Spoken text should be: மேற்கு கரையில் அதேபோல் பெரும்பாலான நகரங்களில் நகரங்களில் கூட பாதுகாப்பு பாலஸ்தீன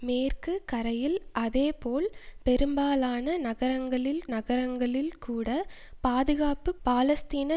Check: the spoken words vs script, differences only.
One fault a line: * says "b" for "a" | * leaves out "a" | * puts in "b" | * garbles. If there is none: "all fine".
all fine